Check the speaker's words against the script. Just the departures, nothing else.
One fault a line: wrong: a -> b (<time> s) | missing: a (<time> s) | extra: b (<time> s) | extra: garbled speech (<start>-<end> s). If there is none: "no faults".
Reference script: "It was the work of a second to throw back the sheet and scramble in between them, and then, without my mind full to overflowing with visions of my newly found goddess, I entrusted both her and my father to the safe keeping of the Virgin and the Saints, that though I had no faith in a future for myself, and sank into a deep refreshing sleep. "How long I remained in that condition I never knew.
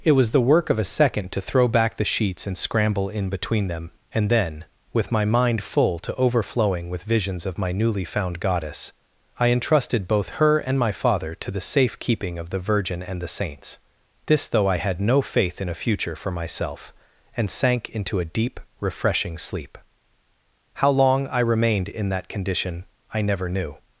wrong: sheet -> sheets (2.0 s)
wrong: without -> with (4.9 s)
wrong: that -> this (14.2 s)